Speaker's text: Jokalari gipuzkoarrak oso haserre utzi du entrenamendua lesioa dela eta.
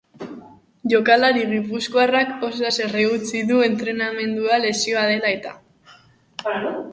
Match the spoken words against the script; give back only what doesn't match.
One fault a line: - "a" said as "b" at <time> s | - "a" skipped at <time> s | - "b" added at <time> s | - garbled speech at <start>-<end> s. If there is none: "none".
none